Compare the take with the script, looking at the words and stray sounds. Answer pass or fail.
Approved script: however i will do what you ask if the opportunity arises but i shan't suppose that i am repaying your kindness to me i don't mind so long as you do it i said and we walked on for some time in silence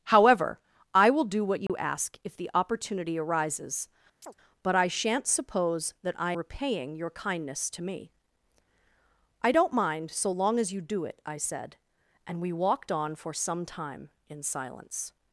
fail